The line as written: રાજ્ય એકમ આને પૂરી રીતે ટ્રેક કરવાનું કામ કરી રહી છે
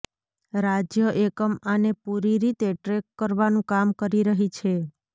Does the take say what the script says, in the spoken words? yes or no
yes